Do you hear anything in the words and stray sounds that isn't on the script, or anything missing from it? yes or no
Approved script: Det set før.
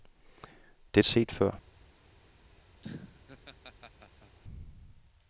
yes